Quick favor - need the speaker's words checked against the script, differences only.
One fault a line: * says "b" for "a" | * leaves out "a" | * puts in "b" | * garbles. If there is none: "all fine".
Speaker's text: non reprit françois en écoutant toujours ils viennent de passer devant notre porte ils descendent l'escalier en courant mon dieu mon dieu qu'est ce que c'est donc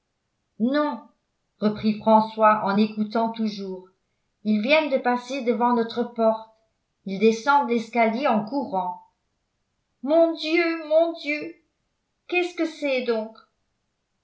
all fine